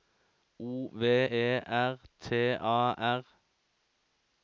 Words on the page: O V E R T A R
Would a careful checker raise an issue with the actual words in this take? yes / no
no